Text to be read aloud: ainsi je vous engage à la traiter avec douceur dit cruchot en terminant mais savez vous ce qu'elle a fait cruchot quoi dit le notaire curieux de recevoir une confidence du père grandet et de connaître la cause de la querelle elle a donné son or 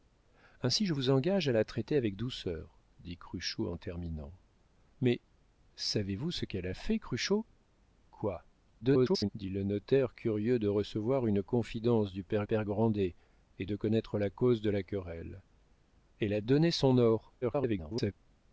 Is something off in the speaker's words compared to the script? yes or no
yes